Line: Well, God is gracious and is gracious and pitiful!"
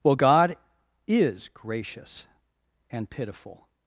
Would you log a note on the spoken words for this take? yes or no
yes